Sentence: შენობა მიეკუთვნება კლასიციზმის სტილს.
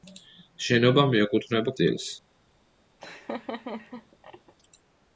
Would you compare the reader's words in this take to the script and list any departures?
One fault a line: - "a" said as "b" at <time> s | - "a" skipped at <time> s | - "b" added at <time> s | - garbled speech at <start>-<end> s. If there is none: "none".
- "კლასიციზმის" skipped at 1.8 s